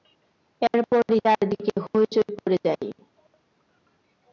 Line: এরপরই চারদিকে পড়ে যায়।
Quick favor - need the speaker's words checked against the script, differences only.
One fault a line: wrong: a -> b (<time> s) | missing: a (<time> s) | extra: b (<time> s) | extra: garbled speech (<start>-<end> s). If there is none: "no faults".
extra: হইচই (1.8 s)